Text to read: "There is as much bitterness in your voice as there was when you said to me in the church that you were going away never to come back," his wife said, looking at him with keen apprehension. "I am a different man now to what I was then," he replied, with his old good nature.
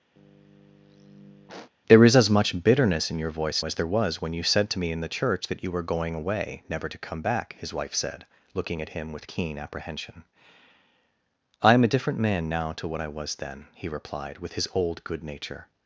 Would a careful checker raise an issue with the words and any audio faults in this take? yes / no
yes